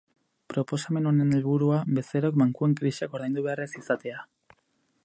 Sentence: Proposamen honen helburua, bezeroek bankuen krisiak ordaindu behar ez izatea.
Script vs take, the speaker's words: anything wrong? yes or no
no